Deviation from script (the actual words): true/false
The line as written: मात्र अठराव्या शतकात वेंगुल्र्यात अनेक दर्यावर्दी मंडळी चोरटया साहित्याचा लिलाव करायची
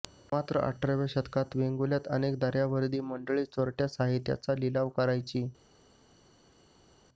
false